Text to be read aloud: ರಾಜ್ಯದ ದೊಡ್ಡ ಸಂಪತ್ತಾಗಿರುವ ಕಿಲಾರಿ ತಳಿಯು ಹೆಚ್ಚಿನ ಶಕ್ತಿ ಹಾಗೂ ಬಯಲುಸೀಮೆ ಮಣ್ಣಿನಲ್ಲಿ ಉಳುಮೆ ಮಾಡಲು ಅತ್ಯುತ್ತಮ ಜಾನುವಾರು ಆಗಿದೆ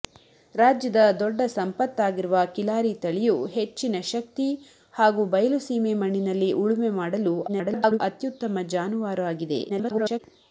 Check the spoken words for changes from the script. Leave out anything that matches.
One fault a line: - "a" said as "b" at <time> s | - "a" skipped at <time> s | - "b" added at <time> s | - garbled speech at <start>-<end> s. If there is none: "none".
- garbled speech at 7.5-8.0 s
- garbled speech at 9.7-10.2 s